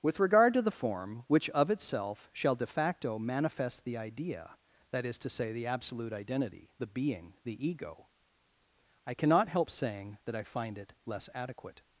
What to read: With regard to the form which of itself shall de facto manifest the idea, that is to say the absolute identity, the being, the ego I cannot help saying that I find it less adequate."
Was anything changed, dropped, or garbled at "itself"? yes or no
no